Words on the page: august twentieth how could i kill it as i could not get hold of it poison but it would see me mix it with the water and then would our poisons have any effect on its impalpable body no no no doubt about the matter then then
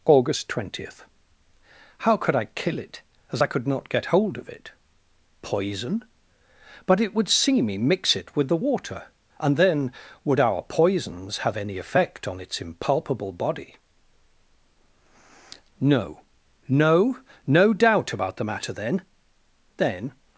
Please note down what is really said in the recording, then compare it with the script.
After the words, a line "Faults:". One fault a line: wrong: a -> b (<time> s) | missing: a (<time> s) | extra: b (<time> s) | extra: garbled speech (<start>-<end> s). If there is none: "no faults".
august twentieth how could i kill it as i could not get hold of it poison but it would see me mix it with the water and then would our poisons have any effect on its impalpable body no no no doubt about the matter then then
Faults:
no faults